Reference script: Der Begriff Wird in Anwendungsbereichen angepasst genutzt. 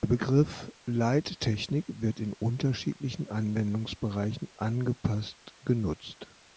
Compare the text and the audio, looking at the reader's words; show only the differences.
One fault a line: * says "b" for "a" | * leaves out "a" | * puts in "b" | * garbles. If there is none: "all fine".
* puts in "Leittechnik"
* puts in "unterschiedlichen"